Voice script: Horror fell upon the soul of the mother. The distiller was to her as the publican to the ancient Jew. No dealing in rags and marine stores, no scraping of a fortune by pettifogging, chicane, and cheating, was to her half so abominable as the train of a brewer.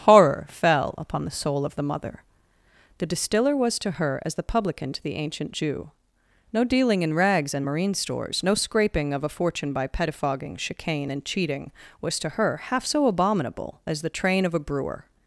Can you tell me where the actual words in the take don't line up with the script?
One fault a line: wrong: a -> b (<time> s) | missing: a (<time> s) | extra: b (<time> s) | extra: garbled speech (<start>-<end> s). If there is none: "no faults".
no faults